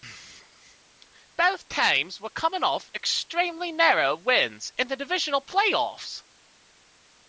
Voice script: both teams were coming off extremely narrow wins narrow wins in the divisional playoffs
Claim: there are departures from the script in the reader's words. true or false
true